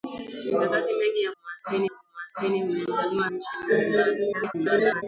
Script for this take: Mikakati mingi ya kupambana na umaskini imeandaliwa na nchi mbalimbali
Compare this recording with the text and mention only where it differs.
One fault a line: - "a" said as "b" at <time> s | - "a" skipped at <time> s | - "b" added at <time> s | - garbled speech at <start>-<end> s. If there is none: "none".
- "kupambana" said as "umaskini" at 1.4 s
- "na" skipped at 3.3 s
- garbled speech at 4.3-5.0 s